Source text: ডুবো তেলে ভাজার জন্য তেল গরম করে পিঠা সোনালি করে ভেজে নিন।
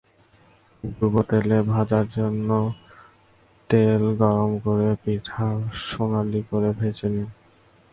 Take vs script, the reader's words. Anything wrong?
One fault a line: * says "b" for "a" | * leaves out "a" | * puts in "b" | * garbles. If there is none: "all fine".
all fine